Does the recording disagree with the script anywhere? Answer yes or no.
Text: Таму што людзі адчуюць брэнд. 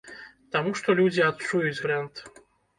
no